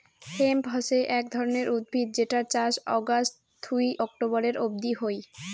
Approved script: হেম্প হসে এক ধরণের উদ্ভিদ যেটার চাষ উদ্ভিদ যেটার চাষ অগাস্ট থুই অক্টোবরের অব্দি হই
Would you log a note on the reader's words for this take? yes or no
yes